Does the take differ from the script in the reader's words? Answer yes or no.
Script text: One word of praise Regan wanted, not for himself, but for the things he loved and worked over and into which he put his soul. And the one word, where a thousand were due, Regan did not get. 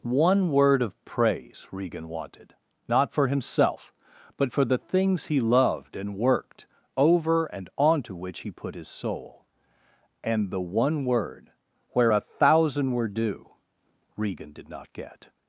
yes